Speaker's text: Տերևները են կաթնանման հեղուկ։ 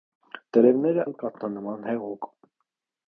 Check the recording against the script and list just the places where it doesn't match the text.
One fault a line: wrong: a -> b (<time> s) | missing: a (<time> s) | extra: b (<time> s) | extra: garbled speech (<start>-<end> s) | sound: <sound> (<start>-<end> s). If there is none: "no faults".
no faults